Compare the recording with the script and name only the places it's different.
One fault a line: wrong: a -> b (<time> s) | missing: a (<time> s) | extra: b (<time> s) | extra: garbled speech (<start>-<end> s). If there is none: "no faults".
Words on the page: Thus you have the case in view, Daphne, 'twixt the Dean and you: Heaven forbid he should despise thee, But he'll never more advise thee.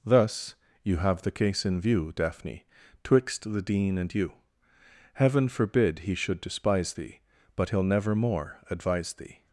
no faults